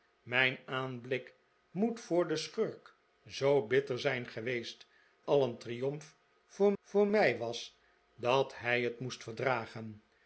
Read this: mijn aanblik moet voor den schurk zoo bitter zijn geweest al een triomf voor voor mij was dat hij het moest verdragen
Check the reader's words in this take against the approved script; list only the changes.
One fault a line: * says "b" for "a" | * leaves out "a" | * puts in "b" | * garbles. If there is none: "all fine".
all fine